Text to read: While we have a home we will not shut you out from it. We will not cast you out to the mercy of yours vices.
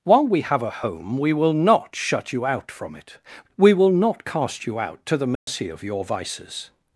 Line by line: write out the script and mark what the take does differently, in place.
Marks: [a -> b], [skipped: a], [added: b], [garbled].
While we have a home we will not shut you out from it. We will not cast you out to the mercy of [yours -> your] vices.